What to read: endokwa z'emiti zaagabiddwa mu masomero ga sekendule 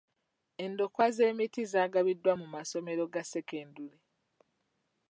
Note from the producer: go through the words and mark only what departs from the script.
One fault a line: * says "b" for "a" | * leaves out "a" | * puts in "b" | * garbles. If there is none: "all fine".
all fine